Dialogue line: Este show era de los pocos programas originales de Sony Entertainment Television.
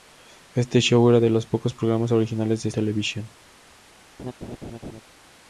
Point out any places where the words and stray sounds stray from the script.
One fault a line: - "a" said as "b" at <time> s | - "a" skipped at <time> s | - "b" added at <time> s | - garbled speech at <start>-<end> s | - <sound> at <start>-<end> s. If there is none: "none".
- "Sony Entertainment" skipped at 2.7 s
- laugh at 4.2-5.0 s